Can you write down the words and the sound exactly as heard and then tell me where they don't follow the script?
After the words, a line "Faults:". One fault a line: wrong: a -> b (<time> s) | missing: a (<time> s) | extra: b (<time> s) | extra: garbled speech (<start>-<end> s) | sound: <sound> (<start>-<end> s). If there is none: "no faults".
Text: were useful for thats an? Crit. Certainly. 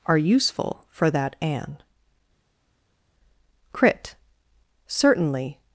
are useful for that an? Crit. Certainly.
Faults:
wrong: were -> are (0.1 s)
wrong: thats -> that (1.1 s)